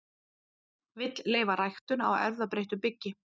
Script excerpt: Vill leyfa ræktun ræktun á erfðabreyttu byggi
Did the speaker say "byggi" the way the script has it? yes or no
yes